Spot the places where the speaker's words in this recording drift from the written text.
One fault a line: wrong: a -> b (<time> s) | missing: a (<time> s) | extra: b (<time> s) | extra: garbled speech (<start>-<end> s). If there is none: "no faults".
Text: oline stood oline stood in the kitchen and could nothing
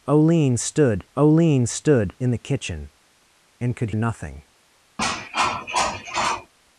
no faults